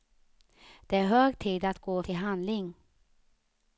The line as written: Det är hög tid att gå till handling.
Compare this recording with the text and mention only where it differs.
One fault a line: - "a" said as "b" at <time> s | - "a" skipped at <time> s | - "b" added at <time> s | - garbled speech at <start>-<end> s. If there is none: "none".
none